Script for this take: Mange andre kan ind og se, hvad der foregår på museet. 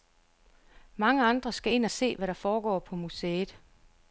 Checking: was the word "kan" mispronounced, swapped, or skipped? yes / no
yes